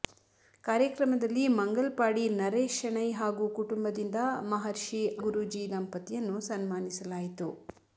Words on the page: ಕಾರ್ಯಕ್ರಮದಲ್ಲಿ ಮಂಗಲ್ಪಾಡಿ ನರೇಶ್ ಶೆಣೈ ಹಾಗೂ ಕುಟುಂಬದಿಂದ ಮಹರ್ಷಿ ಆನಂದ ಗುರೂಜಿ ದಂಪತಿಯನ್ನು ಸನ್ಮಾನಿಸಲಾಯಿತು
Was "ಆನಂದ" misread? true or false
true